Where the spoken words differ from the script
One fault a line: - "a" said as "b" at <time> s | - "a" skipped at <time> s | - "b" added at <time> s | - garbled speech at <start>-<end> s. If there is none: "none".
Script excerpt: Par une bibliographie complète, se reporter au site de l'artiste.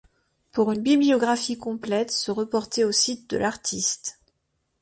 - "Par" said as "Pour" at 0.5 s